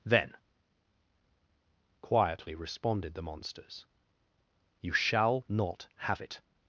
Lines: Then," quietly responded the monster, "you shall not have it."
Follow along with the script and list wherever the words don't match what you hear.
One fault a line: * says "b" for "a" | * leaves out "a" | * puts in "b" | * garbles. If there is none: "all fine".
* says "monsters" for "monster"